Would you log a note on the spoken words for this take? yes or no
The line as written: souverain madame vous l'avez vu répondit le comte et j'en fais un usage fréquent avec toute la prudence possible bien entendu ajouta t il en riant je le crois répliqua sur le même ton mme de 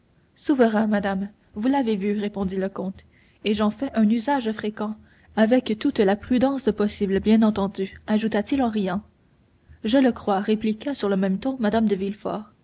no